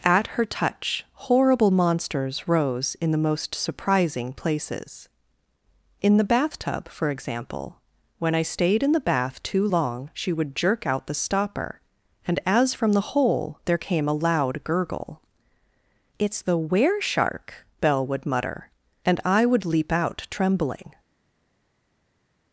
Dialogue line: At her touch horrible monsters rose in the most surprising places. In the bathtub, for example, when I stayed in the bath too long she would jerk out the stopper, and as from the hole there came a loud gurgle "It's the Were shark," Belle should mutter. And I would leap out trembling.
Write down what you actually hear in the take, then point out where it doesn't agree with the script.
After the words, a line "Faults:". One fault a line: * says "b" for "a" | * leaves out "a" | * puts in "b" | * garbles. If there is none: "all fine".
At her touch horrible monsters rose in the most surprising places. In the bathtub, for example, when I stayed in the bath too long she would jerk out the stopper, and as from the hole there came a loud gurgle "It's the Were shark," Belle would mutter. And I would leap out trembling.
Faults:
* says "would" for "should"